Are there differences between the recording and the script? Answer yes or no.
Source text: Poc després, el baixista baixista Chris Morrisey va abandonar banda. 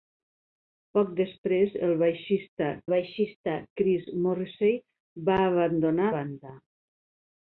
no